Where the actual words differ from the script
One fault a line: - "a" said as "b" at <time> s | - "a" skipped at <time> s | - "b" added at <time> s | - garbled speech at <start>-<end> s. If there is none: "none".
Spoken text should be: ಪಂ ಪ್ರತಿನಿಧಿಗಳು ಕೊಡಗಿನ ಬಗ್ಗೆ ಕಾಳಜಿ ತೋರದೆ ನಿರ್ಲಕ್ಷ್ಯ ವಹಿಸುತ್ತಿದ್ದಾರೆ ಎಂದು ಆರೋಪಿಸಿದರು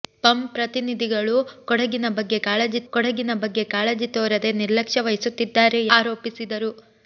- "ಕೊಡಗಿನ ಬಗ್ಗೆ ಕಾಳಜಿ" added at 2.9 s
- "ಎಂದು" skipped at 5.8 s